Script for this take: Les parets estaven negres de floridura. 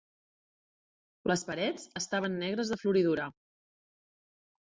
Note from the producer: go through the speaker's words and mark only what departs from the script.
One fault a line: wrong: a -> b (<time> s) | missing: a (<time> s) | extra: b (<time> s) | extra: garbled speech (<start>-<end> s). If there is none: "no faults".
no faults